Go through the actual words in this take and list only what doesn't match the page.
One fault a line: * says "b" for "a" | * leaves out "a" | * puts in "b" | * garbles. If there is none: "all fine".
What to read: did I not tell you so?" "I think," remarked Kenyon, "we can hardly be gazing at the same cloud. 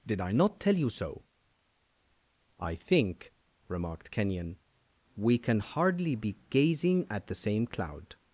all fine